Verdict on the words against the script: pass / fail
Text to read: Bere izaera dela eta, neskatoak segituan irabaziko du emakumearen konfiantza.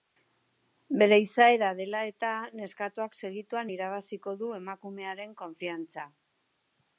pass